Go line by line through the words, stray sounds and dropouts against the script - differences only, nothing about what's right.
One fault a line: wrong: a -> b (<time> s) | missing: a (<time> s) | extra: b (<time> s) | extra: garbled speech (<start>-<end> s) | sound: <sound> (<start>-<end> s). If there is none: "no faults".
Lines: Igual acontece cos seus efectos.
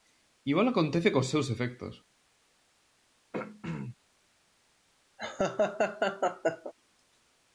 sound: throat clearing (3.3-4.0 s)
sound: laugh (5.2-6.7 s)